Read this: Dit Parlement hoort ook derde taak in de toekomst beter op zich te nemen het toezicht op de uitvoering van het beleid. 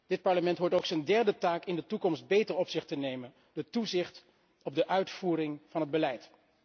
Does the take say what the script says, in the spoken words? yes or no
no